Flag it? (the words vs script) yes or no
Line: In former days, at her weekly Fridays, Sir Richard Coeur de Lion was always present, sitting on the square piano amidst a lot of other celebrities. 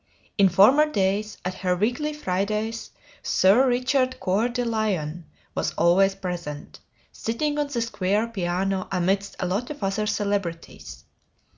no